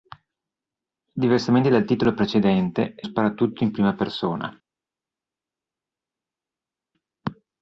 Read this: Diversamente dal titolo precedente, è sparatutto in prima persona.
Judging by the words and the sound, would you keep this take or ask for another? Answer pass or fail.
pass